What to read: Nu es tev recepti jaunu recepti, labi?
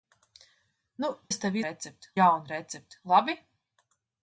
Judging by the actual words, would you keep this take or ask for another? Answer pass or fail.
pass